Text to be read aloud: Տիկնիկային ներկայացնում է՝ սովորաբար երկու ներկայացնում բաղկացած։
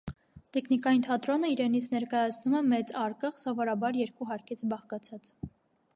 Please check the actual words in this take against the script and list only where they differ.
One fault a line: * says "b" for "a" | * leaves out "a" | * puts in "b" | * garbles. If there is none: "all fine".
* puts in "թատրոնը իրենից"
* puts in "մեծ արկղ"
* says "հարկից" for "ներկայացնում"